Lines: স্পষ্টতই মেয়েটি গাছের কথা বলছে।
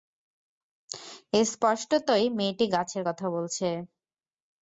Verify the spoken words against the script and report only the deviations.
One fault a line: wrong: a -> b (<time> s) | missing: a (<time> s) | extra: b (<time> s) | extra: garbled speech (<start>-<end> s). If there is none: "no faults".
no faults